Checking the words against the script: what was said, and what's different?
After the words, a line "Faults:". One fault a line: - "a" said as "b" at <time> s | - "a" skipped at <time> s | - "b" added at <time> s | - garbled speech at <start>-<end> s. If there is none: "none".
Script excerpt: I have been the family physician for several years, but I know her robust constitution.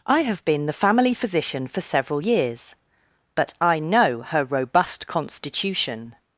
I have been the family physician for several years, but I know her robust constitution.
Faults:
none